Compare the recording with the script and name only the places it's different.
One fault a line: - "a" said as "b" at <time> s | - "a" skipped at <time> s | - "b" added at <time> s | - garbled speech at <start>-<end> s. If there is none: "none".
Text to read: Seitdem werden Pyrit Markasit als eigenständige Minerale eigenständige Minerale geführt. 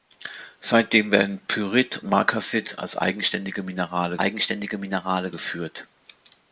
none